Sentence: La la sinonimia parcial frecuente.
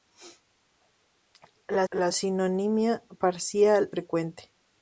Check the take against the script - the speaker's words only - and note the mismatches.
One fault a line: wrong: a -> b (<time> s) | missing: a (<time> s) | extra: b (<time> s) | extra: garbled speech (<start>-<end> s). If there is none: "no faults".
no faults